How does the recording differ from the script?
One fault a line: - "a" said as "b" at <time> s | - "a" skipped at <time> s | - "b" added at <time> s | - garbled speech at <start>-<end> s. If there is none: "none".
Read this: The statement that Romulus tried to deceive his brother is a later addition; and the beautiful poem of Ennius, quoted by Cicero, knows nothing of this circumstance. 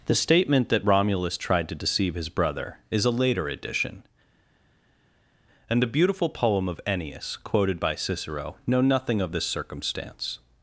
- "knows" said as "know" at 8.6 s